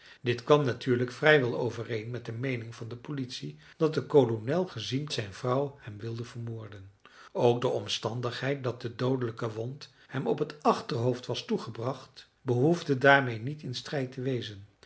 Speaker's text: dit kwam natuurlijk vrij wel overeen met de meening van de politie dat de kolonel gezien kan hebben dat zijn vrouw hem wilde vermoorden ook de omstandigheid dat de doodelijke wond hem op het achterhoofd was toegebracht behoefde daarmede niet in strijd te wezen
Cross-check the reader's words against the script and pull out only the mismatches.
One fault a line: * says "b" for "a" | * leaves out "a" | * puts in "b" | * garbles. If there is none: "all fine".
* leaves out "kan hebben dat"